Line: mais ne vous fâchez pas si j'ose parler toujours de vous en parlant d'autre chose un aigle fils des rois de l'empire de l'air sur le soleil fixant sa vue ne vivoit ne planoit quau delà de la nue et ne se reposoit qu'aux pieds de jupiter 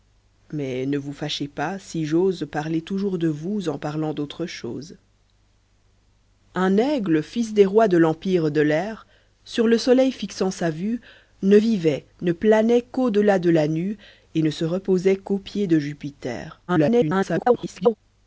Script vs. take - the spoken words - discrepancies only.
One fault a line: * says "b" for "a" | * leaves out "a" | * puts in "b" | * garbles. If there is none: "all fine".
* garbles